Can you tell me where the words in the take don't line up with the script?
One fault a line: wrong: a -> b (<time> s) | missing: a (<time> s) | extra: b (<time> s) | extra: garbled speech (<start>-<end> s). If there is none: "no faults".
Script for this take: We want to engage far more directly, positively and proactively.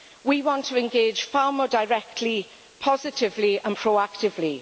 no faults